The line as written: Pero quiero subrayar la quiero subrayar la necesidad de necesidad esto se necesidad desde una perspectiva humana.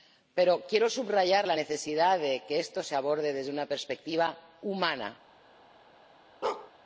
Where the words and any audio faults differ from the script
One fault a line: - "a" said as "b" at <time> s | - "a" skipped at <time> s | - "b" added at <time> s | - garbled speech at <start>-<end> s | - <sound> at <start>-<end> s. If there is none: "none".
- "quiero subrayar la" skipped at 1.6 s
- "necesidad" said as "que" at 2.5 s
- "necesidad" said as "aborde" at 3.0 s
- bark at 6.4-6.7 s